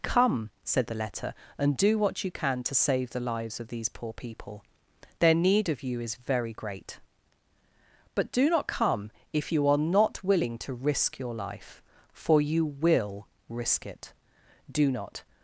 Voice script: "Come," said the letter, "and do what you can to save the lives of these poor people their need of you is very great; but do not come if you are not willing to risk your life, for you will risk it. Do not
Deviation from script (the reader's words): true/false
false